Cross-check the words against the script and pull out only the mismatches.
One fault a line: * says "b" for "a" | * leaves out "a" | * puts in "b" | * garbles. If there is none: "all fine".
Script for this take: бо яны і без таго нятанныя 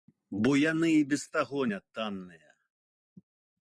all fine